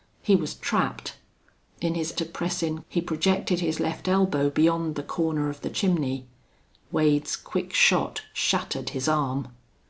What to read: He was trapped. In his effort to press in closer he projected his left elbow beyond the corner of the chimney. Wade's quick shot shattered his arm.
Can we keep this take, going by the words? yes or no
no